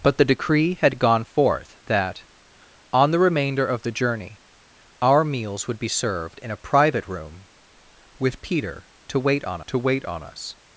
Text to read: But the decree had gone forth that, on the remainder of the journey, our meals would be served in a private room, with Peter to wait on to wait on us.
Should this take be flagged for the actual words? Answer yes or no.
no